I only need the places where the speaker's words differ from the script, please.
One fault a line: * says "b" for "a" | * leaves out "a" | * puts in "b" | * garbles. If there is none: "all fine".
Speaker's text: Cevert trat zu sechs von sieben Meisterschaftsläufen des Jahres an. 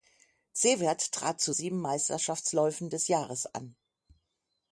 * leaves out "sechs von"